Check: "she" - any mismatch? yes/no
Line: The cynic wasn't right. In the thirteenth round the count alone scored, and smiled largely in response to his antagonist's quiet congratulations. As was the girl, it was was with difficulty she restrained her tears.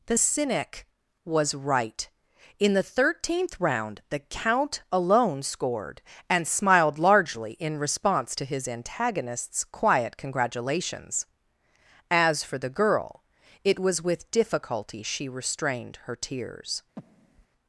no